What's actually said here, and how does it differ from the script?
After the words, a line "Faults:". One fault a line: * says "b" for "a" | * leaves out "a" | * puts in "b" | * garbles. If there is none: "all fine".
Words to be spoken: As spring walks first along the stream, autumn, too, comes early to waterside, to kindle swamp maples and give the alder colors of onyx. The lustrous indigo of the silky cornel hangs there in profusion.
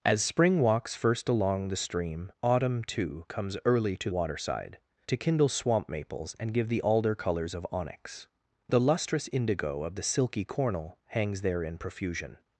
As spring walks first along the stream, autumn, too, comes early to waterside, to kindle swamp maples and give the alder colors of onyx. The lustrous indigo of the silky cornel hangs there in profusion.
Faults:
all fine